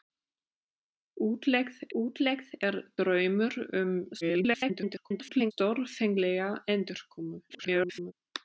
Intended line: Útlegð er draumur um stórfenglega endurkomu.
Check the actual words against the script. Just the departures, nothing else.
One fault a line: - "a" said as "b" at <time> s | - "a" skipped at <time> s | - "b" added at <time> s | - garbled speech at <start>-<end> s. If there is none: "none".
- "útlegð" added at 2.0 s
- garbled speech at 4.2-5.5 s
- garbled speech at 7.5-8.1 s